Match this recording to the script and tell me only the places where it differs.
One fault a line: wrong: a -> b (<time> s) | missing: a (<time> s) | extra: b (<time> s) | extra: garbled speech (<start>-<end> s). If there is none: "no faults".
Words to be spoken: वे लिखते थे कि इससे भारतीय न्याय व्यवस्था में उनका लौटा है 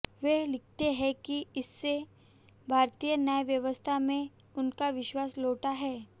wrong: थे -> हैं (0.9 s)
extra: विश्वास (4.9 s)